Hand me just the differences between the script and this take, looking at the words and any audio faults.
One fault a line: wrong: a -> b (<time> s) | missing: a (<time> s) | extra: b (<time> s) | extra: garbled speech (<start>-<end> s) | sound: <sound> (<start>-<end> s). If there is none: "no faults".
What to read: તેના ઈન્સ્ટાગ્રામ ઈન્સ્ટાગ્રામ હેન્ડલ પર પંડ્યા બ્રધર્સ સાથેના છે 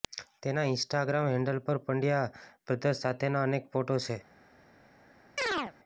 missing: ઈન્સ્ટાગ્રામ (1.3 s)
extra: અનેક ફોટો (3.5 s)
sound: chirp (5.4-5.7 s)